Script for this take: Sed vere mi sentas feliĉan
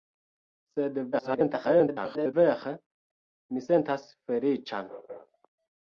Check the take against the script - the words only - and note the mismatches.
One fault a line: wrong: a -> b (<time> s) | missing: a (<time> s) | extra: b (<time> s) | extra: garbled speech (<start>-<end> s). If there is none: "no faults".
extra: garbled speech (1.1-2.3 s)